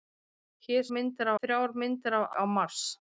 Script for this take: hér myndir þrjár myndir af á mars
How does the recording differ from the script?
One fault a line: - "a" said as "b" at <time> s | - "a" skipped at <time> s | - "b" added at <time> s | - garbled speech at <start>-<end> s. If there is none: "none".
none